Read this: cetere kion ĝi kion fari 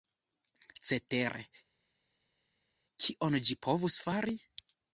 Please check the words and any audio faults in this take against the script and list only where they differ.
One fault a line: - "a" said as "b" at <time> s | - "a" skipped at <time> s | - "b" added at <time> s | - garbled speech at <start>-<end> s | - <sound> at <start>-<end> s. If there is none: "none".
- "kion" said as "povus" at 3.7 s